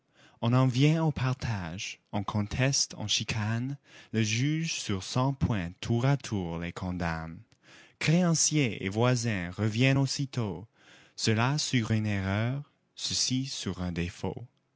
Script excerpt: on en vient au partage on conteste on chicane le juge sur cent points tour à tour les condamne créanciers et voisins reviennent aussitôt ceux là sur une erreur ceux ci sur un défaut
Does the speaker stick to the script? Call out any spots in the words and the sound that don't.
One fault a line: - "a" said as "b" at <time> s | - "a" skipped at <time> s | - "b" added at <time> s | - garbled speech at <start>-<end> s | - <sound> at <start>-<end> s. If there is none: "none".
none